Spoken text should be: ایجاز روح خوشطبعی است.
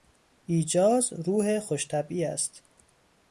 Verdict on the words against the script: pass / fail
pass